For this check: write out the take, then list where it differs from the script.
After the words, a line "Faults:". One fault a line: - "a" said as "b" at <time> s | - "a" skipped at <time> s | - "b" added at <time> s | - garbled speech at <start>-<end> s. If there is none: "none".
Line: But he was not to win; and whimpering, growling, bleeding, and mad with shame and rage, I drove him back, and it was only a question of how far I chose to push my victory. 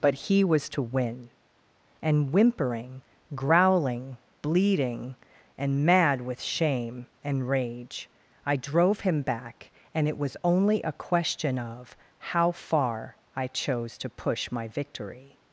But he was to win; and whimpering, growling, bleeding, and mad with shame and rage, I drove him back, and it was only a question of how far I chose to push my victory.
Faults:
- "not" skipped at 0.7 s